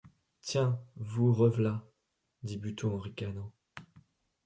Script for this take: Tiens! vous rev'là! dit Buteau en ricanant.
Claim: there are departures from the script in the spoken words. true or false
false